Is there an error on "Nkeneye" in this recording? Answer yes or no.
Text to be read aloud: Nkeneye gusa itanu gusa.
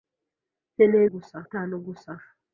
no